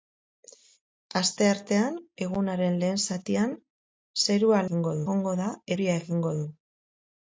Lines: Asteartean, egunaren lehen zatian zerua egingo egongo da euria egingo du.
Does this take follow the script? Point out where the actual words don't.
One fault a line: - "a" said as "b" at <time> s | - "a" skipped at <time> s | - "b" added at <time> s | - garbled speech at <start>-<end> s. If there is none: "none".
none